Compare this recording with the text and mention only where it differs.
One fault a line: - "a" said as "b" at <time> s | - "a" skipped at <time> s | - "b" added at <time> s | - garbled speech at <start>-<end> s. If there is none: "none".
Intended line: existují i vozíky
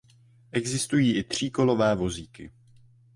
- "tříkolové" added at 1.2 s